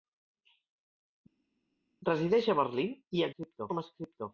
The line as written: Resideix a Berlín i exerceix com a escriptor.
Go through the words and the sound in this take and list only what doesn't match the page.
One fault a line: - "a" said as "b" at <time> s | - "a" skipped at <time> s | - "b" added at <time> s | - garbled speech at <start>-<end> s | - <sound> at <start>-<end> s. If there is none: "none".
- "exerceix" said as "escriptor" at 3.3 s